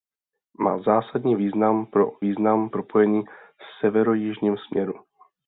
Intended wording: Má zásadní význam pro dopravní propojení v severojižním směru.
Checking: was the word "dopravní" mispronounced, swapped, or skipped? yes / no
yes